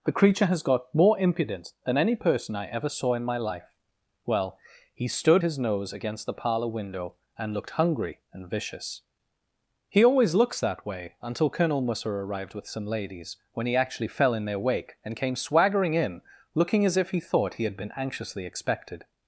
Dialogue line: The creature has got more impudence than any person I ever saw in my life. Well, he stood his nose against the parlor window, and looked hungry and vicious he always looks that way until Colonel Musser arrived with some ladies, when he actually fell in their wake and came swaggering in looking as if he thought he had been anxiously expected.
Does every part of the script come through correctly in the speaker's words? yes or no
yes